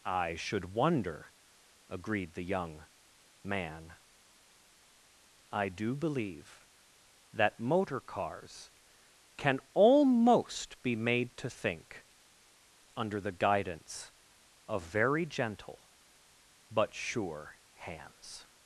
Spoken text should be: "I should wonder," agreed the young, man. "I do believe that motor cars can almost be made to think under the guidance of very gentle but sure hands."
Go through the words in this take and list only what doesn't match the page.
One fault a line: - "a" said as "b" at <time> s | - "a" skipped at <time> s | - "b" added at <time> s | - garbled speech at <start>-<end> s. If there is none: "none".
none